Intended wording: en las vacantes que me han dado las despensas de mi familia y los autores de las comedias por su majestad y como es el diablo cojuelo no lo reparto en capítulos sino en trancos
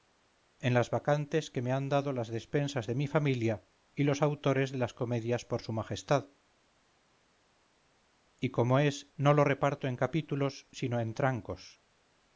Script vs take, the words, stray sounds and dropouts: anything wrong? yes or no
yes